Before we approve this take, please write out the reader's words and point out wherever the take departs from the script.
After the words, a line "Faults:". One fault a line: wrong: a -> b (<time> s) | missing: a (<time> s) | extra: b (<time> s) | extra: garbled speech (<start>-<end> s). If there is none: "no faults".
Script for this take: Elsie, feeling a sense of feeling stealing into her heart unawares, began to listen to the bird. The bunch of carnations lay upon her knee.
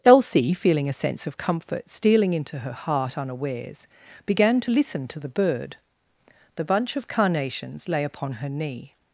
Elsie, feeling a sense of comfort stealing into her heart unawares, began to listen to the bird. The bunch of carnations lay upon her knee.
Faults:
wrong: feeling -> comfort (1.4 s)